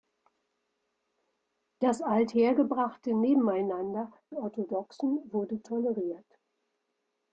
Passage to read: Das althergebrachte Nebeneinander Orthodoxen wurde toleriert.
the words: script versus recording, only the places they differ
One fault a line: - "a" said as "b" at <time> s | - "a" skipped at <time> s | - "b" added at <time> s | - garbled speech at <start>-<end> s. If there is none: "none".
none